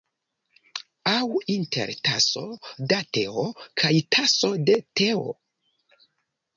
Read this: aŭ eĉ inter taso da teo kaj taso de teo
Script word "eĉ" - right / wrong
wrong